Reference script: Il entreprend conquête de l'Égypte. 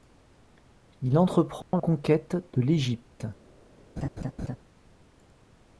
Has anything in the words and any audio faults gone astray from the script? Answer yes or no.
yes